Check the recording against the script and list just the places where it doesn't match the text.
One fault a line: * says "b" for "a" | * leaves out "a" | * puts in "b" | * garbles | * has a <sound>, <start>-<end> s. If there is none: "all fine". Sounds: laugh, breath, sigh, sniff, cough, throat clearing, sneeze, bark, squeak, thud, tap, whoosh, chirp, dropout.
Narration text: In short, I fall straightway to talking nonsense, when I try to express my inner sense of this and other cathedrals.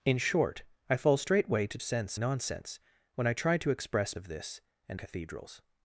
* says "sense" for "talking"
* leaves out "my inner sense"
* leaves out "other"